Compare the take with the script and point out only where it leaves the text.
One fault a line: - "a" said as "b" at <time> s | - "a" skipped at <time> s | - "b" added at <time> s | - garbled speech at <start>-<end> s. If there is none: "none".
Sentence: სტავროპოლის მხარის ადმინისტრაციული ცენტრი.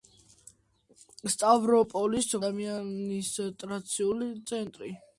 - "მხარის" skipped at 2.3 s